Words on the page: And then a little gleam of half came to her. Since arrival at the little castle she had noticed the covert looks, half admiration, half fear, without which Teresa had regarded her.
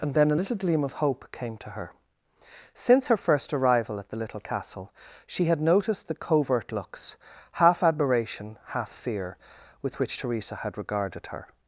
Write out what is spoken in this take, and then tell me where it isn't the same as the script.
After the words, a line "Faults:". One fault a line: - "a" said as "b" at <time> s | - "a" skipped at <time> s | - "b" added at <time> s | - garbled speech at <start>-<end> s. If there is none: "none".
And then a little gleam of hope came to her. Since her first arrival at the little castle she had noticed the covert looks, half admiration, half fear, with which Teresa had regarded her.
Faults:
- "half" said as "hope" at 1.0 s
- "her first" added at 3.1 s
- "without" said as "with" at 9.8 s